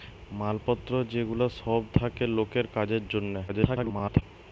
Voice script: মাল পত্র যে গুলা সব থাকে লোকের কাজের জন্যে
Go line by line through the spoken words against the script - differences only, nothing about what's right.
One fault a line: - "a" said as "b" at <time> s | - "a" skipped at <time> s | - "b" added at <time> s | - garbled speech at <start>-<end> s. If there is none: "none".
- garbled speech at 3.5-4.2 s